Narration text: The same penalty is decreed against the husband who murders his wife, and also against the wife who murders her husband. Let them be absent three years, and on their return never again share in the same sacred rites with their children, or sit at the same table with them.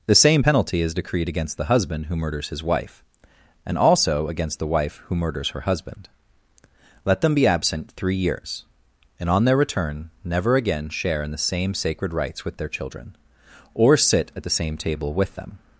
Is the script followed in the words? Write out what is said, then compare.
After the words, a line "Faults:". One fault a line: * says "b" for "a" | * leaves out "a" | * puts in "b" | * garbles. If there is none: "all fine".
The same penalty is decreed against the husband who murders his wife, and also against the wife who murders her husband. Let them be absent three years, and on their return never again share in the same sacred rites with their children, or sit at the same table with them.
Faults:
all fine